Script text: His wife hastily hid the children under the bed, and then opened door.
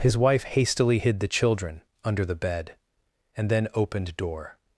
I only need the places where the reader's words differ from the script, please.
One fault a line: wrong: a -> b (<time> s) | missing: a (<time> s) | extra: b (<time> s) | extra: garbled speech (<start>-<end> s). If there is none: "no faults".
no faults